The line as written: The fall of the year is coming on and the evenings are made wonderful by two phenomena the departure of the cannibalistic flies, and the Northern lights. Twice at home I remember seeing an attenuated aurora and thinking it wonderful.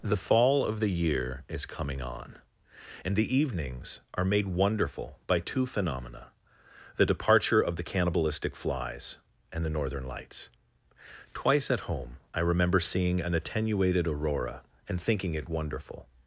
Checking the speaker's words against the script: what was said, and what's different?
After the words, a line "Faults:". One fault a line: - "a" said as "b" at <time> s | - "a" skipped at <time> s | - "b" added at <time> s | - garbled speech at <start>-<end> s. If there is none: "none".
The fall of the year is coming on and the evenings are made wonderful by two phenomena the departure of the cannibalistic flies, and the Northern lights. Twice at home I remember seeing an attenuated aurora and thinking it wonderful.
Faults:
none